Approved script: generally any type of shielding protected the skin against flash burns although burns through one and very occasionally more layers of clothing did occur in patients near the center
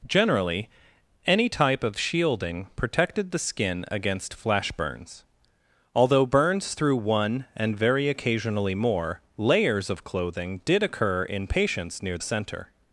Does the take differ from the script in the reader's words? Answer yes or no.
yes